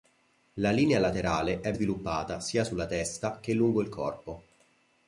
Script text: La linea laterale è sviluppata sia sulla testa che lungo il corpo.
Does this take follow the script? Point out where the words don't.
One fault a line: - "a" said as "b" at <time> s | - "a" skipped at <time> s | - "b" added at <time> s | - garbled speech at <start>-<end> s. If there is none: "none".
none